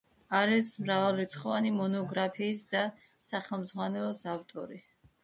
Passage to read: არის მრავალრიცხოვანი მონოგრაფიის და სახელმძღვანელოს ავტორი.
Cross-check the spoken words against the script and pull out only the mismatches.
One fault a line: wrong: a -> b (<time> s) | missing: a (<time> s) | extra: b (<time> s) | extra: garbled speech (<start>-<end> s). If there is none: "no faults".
no faults